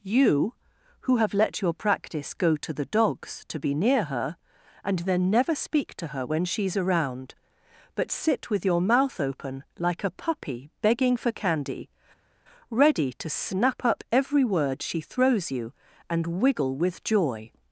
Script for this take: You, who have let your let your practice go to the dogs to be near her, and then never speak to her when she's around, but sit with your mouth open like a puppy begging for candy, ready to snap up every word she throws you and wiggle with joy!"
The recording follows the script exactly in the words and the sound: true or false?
false